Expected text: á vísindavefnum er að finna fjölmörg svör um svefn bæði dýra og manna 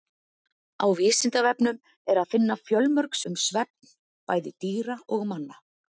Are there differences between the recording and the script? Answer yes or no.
yes